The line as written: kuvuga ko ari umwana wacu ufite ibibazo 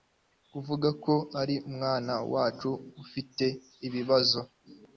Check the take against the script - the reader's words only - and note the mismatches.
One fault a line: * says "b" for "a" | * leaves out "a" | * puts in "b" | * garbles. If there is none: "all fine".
all fine